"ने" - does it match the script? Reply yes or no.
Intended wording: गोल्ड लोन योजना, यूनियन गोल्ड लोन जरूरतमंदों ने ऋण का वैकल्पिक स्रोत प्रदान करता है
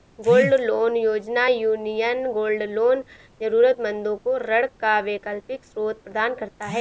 no